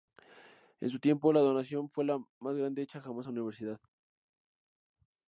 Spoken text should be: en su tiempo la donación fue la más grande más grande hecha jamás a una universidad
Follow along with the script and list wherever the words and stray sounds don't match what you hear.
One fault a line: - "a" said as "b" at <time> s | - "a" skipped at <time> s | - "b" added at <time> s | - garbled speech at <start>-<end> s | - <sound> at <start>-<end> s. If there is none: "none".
- "más grande" skipped at 2.8 s